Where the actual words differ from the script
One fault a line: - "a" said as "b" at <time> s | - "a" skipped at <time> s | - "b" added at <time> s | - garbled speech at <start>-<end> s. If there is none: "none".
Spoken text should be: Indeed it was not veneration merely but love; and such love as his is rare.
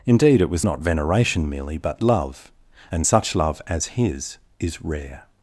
none